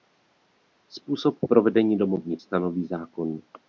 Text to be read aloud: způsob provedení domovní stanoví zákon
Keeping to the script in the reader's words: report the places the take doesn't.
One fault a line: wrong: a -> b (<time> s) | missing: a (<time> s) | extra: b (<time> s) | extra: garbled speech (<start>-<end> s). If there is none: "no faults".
no faults